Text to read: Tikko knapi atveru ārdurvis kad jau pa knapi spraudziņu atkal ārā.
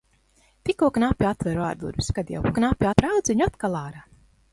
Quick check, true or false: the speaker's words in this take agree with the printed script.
true